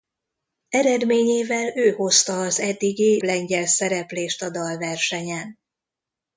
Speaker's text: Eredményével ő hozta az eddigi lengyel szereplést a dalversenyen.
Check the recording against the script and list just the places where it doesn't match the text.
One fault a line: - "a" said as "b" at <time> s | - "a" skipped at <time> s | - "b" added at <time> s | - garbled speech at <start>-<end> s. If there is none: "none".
none